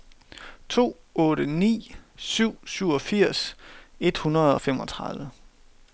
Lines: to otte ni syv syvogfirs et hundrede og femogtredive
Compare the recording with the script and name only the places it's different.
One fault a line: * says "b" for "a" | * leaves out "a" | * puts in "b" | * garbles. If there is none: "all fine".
all fine